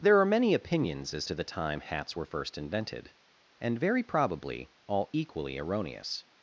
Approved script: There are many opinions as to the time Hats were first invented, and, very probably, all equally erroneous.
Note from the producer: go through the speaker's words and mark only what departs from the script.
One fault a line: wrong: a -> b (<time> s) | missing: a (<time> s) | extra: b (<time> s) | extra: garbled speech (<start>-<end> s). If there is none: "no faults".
no faults